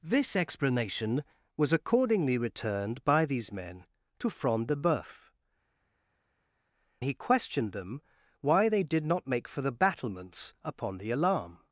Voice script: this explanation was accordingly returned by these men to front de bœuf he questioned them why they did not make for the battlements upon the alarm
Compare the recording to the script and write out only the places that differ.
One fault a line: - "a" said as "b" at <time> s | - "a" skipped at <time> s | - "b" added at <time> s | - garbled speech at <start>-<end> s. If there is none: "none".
none